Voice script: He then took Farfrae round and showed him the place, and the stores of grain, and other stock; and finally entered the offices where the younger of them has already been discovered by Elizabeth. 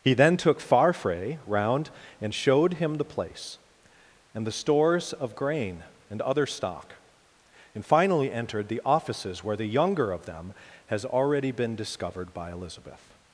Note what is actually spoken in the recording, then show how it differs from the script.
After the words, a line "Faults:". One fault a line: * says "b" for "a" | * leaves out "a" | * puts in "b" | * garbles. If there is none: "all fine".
He then took Farfrae round and showed him the place, and the stores of grain, and other stock; and finally entered the offices where the younger of them has already been discovered by Elizabeth.
Faults:
all fine